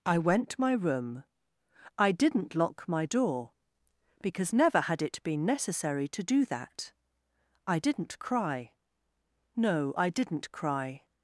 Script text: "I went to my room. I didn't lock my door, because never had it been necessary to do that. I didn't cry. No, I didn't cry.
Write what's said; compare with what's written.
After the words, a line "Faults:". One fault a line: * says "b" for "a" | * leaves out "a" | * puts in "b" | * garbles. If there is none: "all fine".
"I went my room. I didn't lock my door, because never had it been necessary to do that. I didn't cry. No, I didn't cry.
Faults:
* leaves out "to"